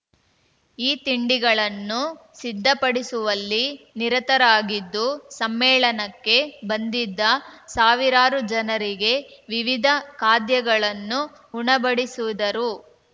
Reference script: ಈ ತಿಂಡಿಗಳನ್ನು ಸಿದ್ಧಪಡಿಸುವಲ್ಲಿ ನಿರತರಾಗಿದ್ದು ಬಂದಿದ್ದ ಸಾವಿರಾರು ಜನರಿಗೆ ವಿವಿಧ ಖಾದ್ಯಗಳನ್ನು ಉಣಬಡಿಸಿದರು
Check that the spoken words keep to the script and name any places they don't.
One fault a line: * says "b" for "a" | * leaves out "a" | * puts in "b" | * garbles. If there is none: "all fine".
* puts in "ಸಮ್ಮೇಳನಕ್ಕೆ"